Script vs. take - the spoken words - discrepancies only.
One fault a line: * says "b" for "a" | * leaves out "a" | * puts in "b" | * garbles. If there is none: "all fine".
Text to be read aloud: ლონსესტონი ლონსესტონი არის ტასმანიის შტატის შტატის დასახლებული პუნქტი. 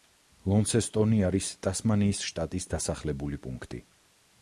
* leaves out "ლონსესტონი"
* leaves out "შტატის"